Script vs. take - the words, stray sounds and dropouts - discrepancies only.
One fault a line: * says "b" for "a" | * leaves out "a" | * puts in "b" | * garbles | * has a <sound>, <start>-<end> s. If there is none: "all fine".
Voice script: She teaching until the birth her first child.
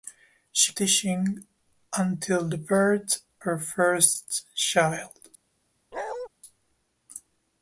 * has a bark, 5.9-6.3 s